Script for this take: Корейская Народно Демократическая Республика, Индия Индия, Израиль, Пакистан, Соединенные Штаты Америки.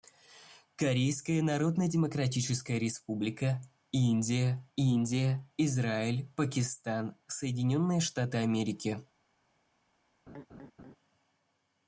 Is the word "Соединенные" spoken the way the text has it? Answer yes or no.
yes